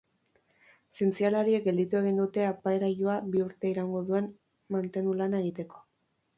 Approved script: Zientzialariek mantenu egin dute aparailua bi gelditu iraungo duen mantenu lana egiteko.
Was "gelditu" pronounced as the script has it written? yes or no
no